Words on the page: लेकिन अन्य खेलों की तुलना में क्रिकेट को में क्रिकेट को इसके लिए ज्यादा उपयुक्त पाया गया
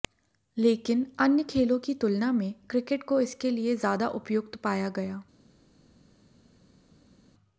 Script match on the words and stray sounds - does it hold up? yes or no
no